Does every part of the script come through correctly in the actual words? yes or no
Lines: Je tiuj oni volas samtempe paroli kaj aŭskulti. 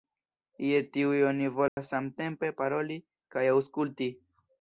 yes